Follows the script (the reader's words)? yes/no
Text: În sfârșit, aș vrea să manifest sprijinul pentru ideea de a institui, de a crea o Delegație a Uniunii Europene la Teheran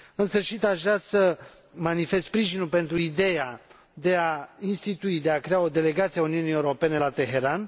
yes